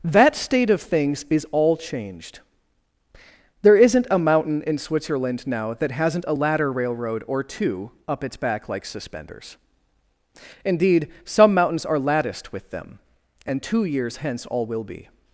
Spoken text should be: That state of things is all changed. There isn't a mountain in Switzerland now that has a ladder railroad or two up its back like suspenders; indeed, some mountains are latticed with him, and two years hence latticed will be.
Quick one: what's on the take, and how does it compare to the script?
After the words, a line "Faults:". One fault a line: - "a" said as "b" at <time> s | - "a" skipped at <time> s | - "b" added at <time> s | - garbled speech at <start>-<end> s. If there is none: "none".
That state of things is all changed. There isn't a mountain in Switzerland now that hasn't a ladder railroad or two up its back like suspenders; indeed, some mountains are latticed with them, and two years hence all will be.
Faults:
- "has" said as "hasn't" at 5.9 s
- "him" said as "them" at 12.7 s
- "latticed" said as "all" at 14.5 s